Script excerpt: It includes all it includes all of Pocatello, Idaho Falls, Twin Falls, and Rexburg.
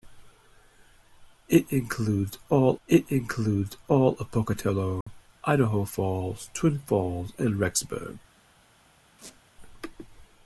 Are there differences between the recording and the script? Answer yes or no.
no